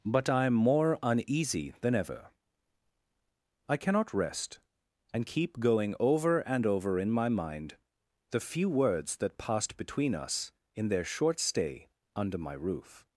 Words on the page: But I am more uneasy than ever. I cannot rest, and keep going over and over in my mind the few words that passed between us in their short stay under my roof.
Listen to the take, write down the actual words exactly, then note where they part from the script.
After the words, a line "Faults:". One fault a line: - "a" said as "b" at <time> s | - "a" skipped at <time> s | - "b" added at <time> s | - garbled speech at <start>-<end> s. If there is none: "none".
But I am more uneasy than ever. I cannot rest, and keep going over and over in my mind the few words that passed between us in their short stay under my roof.
Faults:
none